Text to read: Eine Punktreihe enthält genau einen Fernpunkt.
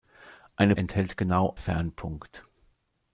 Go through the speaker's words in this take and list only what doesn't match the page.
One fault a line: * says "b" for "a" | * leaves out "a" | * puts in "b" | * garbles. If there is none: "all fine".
* leaves out "Punktreihe"
* leaves out "einen"